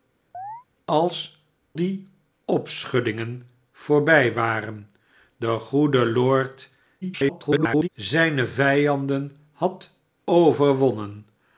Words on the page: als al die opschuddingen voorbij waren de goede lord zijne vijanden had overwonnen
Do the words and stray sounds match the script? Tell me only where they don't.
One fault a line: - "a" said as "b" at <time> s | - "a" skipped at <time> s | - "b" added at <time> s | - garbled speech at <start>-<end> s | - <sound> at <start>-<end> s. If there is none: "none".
- chirp at 0.3-0.6 s
- "al" skipped at 1.4 s
- garbled speech at 7.0-7.9 s